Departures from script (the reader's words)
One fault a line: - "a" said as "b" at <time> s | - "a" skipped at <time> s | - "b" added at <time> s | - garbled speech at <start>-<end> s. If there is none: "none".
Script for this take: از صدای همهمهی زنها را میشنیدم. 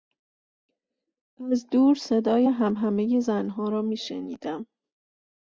- "دور" added at 1.7 s